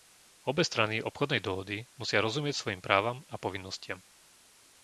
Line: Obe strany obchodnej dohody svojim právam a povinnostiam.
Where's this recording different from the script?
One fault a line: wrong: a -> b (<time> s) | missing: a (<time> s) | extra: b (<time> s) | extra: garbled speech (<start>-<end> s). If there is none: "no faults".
extra: musia rozumieť (2.0 s)